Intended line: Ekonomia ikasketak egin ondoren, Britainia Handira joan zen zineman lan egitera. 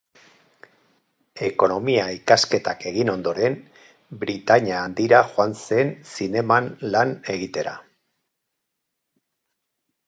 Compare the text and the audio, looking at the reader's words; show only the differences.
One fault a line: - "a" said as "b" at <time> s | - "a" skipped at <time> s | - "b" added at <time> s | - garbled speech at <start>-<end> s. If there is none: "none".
none